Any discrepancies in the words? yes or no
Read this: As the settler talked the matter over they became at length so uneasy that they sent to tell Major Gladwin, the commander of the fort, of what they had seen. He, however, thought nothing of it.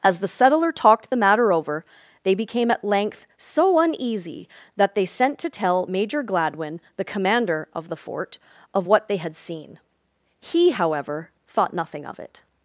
no